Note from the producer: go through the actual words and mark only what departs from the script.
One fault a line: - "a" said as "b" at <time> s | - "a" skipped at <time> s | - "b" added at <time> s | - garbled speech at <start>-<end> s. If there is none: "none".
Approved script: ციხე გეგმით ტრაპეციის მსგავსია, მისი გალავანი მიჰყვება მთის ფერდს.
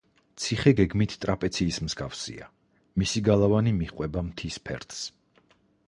none